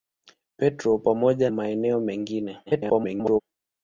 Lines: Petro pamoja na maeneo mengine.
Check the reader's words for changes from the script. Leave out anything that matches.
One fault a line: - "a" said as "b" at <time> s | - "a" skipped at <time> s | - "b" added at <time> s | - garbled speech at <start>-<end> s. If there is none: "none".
- "na" skipped at 1.5 s
- garbled speech at 2.7-3.4 s